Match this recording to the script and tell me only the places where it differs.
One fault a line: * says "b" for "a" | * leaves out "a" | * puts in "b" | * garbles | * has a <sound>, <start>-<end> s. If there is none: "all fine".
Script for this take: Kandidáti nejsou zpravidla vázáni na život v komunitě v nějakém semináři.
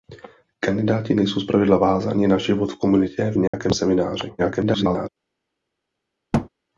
* has a dropout, 3.5-3.5 s
* garbles
* has a thud, 6.3-6.5 s